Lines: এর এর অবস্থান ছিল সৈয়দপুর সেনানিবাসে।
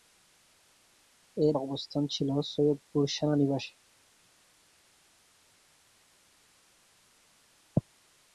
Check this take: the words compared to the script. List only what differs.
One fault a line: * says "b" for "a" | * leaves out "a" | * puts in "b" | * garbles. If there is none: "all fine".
* leaves out "এর"